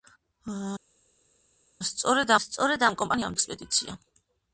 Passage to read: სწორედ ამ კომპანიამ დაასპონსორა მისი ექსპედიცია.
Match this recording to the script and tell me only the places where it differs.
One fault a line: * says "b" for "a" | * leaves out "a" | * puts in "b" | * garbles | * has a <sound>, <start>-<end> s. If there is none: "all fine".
* puts in "სწორედ"
* leaves out "დაასპონსორა მისი"